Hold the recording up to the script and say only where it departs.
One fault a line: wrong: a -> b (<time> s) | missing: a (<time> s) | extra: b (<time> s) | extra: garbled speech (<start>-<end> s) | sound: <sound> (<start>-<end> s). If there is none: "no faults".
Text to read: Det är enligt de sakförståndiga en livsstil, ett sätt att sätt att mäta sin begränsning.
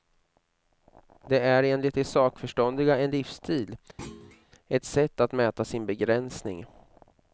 sound: thud (4.0-4.5 s)
missing: sätt att (5.3 s)